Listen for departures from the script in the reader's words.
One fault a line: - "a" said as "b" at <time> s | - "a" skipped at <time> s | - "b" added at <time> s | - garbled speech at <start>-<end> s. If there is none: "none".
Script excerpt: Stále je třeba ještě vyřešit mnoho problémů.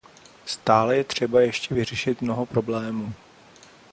none